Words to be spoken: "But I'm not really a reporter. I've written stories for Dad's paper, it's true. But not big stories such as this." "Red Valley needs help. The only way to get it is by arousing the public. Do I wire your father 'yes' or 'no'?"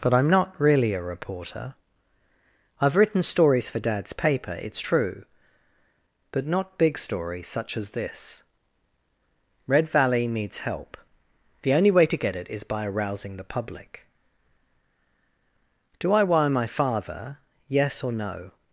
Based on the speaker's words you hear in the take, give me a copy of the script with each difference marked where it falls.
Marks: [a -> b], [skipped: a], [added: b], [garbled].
"But I'm not really a reporter. I've written stories for Dad's paper, it's true. But not big stories such as this." "Red Valley needs help. The only way to get it is by arousing the public. Do I wire [your -> my] father 'yes' or 'no'?"